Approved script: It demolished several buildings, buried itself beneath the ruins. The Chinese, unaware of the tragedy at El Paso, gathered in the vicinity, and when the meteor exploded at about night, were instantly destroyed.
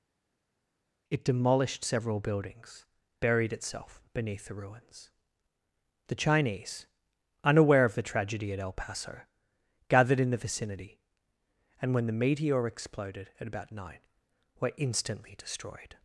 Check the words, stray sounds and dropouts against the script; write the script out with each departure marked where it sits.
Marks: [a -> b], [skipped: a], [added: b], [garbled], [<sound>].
It demolished several buildings, buried itself beneath the ruins. The Chinese, unaware of the tragedy at El Paso, gathered in the vicinity, and when the meteor exploded at about night, were instantly destroyed.